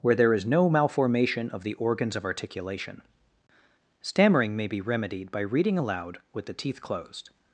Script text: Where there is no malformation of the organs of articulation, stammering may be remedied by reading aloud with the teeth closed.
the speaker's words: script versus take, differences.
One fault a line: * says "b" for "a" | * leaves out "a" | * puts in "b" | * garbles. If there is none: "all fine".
all fine